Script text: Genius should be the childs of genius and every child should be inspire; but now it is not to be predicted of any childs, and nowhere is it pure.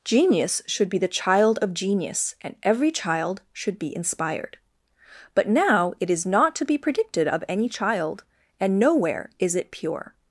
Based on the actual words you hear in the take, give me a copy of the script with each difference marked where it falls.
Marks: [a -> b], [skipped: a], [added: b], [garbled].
Genius should be the [childs -> child] of genius and every child should be [inspire; -> inspired] but now it is not to be predicted of any [childs, -> child] and nowhere is it pure.